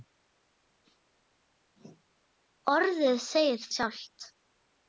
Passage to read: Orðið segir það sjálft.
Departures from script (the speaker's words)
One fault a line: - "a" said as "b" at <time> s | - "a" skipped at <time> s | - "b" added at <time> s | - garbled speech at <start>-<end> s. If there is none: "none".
- "það" skipped at 3.7 s